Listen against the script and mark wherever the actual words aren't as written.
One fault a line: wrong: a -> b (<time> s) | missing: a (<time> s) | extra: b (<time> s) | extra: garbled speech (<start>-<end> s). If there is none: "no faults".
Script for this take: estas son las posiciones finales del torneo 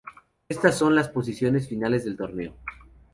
no faults